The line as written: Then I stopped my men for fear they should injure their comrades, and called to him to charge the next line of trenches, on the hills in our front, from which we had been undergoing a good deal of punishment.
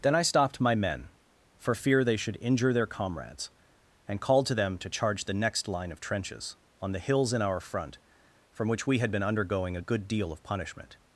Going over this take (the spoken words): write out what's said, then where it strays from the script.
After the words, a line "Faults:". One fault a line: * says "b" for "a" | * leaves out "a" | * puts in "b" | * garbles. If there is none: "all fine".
Then I stopped my men for fear they should injure their comrades, and called to them to charge the next line of trenches, on the hills in our front, from which we had been undergoing a good deal of punishment.
Faults:
* says "them" for "him"